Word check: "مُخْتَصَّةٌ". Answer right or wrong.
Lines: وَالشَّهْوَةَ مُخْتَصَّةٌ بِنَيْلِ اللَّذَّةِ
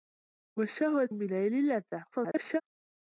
wrong